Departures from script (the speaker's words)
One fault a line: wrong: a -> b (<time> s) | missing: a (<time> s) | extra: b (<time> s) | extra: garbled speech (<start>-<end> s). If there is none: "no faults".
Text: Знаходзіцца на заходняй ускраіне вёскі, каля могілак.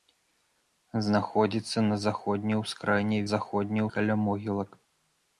wrong: вёскі -> заходняй (3.3 s)